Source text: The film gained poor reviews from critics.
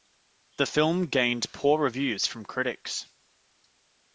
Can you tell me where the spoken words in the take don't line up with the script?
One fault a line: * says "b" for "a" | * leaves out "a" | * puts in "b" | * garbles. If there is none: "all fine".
all fine